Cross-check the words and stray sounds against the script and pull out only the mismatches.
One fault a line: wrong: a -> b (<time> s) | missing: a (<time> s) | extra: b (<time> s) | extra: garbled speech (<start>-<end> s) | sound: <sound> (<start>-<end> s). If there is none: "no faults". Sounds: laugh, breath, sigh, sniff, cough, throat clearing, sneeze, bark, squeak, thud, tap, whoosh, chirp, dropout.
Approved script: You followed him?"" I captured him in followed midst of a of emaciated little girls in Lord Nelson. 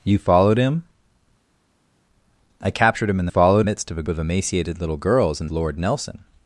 no faults